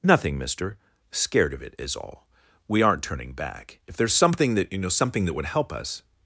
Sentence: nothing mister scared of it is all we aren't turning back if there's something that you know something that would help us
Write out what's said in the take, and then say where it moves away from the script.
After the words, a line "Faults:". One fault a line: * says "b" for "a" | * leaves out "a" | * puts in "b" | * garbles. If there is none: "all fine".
nothing mister scared of it is all we aren't turning back if there's something that you know something that would help us
Faults:
all fine